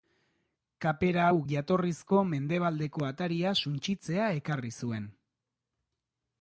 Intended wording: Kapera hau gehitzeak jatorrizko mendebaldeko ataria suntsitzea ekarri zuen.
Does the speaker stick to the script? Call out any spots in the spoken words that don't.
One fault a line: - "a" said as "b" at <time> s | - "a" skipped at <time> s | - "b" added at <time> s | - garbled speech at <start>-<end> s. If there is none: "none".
- "gehitzeak" skipped at 1.4 s